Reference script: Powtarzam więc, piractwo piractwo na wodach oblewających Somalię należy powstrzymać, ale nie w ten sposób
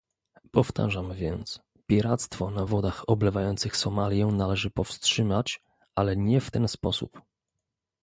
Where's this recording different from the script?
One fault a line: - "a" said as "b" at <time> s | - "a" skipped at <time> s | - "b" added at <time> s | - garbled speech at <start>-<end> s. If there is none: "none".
- "piractwo" skipped at 2.5 s